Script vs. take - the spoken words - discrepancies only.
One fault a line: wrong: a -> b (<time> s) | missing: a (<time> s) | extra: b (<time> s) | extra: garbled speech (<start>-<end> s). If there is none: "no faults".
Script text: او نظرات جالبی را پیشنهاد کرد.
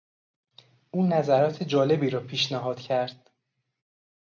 no faults